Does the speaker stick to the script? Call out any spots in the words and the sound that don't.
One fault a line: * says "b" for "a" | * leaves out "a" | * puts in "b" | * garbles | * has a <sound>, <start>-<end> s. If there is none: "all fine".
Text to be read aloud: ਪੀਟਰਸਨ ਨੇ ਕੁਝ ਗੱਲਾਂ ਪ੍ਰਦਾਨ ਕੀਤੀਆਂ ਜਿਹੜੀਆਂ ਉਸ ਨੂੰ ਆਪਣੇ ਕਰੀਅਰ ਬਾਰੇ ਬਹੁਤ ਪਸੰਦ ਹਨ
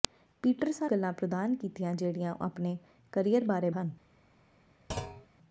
* leaves out "ਨੇ ਕੁਝ"
* leaves out "ਉਸ ਨੂੰ"
* leaves out "ਬਹੁਤ ਪਸੰਦ"
* has a thud, 4.9-5.3 s